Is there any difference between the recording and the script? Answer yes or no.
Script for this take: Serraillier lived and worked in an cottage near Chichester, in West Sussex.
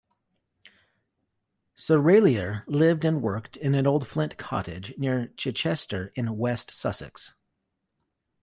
yes